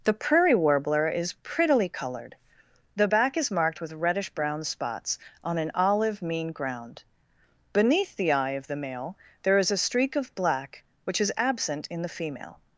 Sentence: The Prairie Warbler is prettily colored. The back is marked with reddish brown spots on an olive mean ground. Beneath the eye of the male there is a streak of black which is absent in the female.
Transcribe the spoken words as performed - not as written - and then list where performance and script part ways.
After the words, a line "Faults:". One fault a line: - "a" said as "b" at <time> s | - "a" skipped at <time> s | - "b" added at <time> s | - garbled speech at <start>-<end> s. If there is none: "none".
The Prairie Warbler is prettily colored. The back is marked with reddish brown spots on an olive mean ground. Beneath the eye of the male there is a streak of black which is absent in the female.
Faults:
none